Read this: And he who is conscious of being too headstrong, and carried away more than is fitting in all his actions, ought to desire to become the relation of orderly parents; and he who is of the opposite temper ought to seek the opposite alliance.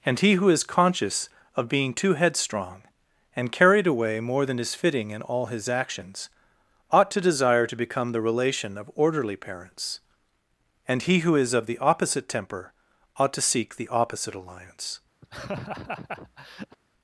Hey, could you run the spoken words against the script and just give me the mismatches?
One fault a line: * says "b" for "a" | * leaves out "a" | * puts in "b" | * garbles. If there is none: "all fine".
all fine